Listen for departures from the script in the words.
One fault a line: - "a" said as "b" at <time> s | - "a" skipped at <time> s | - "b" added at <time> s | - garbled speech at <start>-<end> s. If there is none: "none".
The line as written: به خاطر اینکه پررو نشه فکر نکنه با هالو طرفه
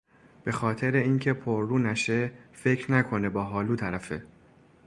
none